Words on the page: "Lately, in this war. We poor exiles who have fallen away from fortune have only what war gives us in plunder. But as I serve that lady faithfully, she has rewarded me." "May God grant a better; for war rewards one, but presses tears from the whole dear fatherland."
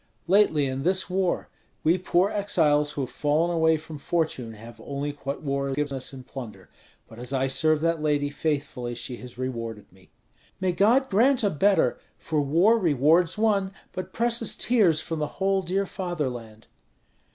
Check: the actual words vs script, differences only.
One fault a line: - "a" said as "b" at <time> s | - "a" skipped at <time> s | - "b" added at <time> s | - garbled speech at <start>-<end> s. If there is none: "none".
none